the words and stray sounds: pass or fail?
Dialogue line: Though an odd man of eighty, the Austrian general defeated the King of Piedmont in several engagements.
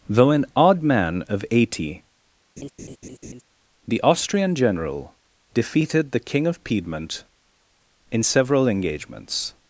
fail